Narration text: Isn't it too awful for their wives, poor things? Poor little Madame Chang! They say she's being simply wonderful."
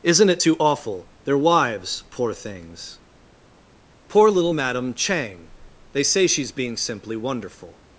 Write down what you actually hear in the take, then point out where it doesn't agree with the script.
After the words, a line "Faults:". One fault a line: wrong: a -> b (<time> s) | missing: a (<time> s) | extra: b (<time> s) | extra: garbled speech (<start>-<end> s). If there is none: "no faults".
Isn't it too awful their wives, poor things? Poor little Madame Chang! They say she's being simply wonderful."
Faults:
missing: for (1.1 s)